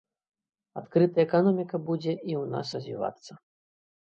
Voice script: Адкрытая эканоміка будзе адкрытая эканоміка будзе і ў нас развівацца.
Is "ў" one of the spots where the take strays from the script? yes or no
no